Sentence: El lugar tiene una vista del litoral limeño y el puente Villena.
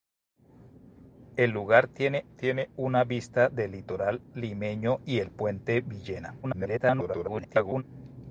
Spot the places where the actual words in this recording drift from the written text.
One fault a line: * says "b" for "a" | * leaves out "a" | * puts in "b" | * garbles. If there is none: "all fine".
* puts in "tiene"
* garbles